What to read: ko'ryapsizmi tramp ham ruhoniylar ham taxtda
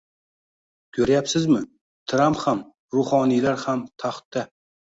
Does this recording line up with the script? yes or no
yes